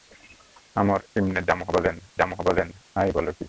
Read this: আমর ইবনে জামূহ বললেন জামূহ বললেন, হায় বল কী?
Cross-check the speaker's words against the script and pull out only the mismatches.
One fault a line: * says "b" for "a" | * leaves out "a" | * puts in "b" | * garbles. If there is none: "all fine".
all fine